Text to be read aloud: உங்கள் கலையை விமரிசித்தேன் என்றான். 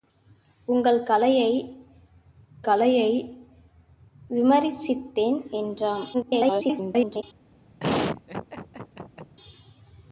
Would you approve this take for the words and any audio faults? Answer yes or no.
no